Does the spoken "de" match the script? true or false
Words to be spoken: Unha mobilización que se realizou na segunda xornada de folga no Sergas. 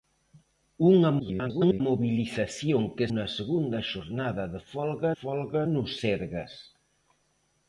true